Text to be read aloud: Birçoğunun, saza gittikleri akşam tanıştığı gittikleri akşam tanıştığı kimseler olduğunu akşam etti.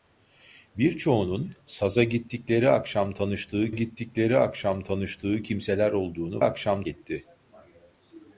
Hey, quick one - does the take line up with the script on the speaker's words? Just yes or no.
yes